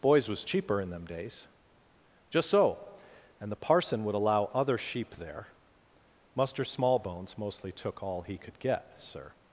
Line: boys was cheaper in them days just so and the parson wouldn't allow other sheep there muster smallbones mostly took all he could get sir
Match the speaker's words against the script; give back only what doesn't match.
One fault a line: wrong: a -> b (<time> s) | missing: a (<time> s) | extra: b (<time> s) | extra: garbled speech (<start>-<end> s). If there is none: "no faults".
wrong: wouldn't -> would (4.0 s)